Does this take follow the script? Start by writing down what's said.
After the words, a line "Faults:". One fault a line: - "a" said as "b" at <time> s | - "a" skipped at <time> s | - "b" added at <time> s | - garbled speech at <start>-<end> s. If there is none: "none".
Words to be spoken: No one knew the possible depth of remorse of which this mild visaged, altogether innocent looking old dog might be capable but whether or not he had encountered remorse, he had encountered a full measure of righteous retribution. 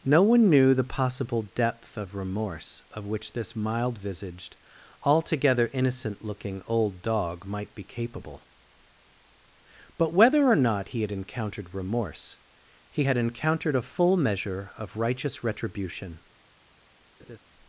No one knew the possible depth of remorse of which this mild visaged, altogether innocent looking old dog might be capable but whether or not he had encountered remorse, he had encountered a full measure of righteous retribution.
Faults:
none